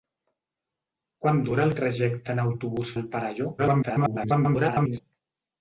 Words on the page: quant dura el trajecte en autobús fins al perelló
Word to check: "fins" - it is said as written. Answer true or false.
false